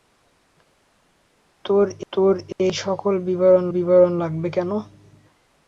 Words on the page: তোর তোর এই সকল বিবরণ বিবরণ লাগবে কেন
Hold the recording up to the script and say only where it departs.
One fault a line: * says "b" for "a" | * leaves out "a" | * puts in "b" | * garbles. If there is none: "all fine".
all fine